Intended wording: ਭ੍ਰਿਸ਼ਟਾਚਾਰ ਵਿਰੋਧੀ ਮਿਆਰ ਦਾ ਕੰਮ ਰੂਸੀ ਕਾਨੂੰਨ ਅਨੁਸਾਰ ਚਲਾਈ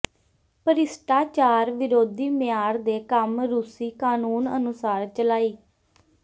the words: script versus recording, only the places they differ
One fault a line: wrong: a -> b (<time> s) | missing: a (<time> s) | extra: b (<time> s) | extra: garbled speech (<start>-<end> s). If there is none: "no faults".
wrong: ਦਾ -> ਦੇ (2.8 s)